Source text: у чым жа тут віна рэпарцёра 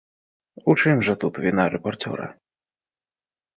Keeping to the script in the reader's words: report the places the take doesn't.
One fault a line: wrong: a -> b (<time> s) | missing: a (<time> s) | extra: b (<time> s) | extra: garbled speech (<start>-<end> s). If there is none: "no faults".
no faults